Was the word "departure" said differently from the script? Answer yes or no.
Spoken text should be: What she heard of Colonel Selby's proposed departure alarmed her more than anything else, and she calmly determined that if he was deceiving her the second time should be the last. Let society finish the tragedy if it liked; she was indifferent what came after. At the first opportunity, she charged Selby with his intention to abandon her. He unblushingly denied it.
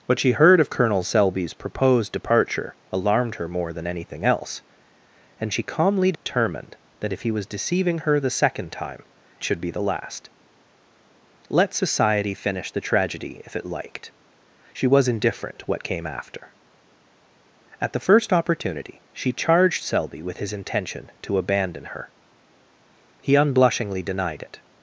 no